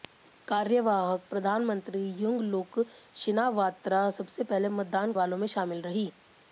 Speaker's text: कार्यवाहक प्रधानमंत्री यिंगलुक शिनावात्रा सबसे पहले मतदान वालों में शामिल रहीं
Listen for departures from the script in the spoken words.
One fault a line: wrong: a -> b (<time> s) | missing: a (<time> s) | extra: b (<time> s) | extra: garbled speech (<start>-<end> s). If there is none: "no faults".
no faults